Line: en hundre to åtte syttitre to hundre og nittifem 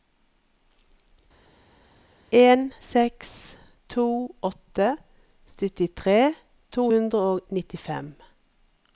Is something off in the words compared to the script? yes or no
yes